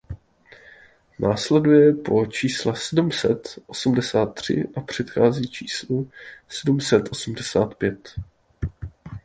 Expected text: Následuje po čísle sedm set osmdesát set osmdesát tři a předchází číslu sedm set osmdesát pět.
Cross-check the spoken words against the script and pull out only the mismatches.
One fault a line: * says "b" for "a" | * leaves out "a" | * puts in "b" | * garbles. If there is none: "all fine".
* leaves out "set osmdesát"